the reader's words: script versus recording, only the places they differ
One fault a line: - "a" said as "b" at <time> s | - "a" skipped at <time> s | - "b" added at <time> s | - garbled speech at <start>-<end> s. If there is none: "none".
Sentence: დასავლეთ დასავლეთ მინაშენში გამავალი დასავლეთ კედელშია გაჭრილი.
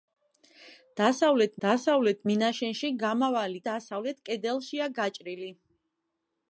none